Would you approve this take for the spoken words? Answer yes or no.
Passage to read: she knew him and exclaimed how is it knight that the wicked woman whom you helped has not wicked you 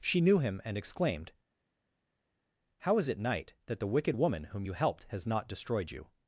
no